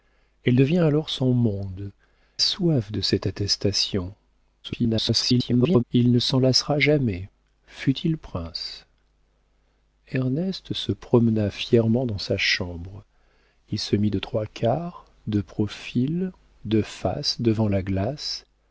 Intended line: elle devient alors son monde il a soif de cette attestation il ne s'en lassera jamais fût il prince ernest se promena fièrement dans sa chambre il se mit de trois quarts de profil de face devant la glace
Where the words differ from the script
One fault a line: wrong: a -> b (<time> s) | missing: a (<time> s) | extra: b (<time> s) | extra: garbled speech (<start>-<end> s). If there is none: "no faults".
missing: il a (1.9 s)
extra: garbled speech (4.6-5.8 s)